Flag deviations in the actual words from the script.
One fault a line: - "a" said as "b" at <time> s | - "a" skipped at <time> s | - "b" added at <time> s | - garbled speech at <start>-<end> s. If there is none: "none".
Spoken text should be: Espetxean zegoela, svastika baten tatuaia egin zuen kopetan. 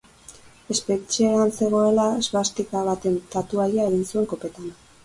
none